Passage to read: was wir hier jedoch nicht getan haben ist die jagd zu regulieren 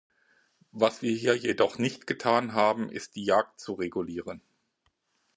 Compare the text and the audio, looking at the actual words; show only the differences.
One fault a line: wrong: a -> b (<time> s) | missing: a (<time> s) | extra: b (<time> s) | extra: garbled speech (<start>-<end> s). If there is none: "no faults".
no faults